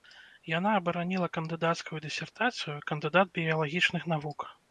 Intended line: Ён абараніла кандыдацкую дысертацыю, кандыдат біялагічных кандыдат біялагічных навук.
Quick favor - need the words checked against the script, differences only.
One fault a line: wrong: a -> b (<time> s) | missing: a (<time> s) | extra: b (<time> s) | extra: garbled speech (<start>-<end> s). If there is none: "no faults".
wrong: Ён -> Яна (0.5 s)
missing: кандыдат біялагічных (4.1 s)